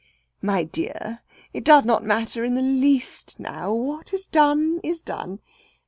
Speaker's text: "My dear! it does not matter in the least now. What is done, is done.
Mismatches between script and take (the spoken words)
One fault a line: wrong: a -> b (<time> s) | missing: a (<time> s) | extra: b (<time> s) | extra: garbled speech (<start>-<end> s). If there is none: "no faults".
no faults